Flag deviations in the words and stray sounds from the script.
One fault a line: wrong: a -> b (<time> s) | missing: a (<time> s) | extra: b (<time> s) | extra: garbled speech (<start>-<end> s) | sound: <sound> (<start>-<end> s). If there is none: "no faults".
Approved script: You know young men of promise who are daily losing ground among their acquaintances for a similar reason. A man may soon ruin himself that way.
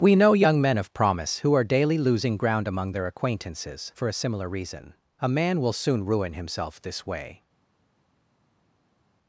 wrong: You -> We (0.0 s)
wrong: may -> will (5.6 s)
wrong: that -> this (6.8 s)